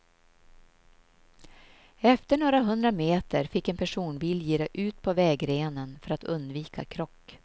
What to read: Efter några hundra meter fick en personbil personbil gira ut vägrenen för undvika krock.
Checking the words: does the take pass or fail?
fail